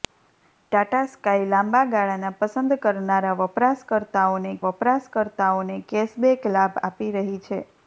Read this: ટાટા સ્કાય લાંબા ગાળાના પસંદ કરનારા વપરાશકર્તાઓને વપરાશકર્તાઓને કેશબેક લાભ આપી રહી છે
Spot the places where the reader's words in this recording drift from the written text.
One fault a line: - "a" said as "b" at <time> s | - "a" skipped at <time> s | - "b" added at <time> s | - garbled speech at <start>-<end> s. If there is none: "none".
none